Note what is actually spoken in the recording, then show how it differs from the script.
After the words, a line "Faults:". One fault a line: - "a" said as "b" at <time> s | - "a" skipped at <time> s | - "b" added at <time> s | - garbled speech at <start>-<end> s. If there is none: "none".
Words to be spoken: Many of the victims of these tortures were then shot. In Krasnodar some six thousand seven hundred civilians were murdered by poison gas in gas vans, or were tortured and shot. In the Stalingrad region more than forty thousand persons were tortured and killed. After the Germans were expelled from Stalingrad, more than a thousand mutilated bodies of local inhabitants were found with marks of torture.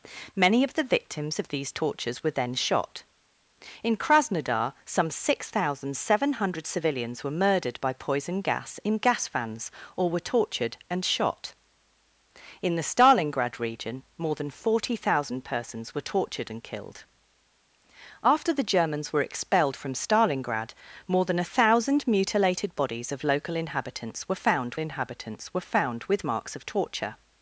Many of the victims of these tortures were then shot. In Krasnodar some six thousand seven hundred civilians were murdered by poison gas in gas vans, or were tortured and shot. In the Stalingrad region more than forty thousand persons were tortured and killed. After the Germans were expelled from Stalingrad, more than a thousand mutilated bodies of local inhabitants were found inhabitants were found with marks of torture.
Faults:
- "inhabitants were found" added at 24.8 s